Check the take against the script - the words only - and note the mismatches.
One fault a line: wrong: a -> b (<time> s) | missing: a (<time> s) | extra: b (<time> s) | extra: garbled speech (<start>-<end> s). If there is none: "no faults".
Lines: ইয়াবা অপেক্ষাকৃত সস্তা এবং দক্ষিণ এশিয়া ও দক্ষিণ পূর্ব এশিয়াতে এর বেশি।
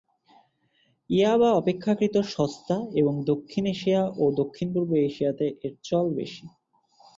extra: চল (5.8 s)